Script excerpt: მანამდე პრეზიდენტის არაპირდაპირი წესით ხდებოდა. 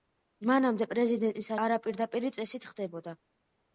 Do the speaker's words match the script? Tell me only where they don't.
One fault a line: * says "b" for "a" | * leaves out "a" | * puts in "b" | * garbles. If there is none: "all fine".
all fine